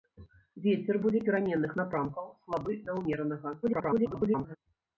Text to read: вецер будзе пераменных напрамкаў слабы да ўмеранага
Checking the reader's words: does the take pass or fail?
fail